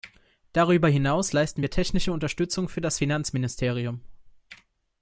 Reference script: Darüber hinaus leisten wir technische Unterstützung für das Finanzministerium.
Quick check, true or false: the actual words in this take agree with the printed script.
true